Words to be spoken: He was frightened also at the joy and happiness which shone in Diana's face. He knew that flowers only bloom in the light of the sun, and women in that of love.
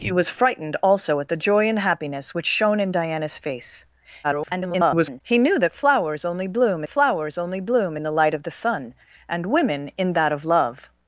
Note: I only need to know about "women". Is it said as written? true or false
true